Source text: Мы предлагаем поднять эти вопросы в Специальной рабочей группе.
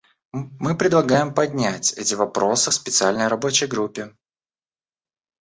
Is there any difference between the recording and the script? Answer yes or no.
no